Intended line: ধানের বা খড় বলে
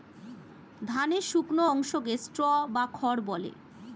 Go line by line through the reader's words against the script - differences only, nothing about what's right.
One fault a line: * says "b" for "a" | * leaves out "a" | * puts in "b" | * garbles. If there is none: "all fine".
* puts in "শুকনো অংশকে স্ট্র"